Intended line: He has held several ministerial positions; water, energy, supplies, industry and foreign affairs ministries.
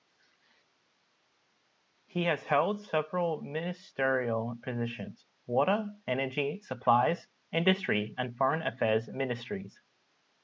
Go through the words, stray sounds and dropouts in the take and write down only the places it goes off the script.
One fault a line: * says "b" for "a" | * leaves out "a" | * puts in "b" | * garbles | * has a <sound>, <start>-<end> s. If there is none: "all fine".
all fine